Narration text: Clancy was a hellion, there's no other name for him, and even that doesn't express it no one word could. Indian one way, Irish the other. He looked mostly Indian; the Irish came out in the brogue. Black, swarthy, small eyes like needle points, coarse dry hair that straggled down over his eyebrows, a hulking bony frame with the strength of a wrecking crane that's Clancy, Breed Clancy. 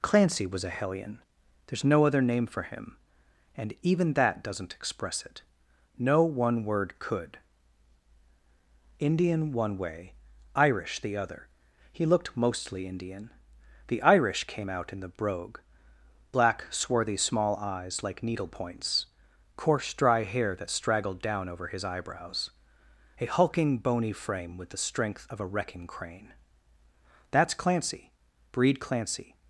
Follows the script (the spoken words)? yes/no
yes